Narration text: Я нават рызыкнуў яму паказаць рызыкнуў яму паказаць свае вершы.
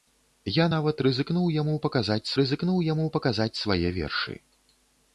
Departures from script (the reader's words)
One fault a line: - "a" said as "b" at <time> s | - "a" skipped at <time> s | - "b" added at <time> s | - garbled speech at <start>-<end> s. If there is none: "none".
none